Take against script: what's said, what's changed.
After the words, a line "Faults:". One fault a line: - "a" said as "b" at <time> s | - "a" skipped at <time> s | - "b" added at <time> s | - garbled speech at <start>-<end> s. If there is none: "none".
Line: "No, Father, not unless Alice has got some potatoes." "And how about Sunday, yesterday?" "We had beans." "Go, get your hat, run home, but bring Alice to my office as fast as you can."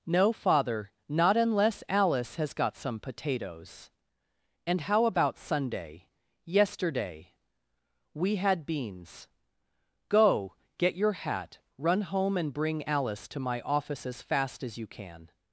"No, Father, not unless Alice has got some potatoes." "And how about Sunday, yesterday?" "We had beans." "Go, get your hat, run home, and bring Alice to my office as fast as you can."
Faults:
- "but" said as "and" at 12.3 s